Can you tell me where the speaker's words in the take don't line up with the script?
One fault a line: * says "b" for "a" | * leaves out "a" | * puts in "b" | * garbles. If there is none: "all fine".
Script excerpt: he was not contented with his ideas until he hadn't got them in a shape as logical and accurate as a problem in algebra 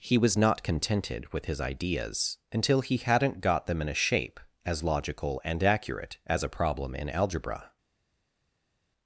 all fine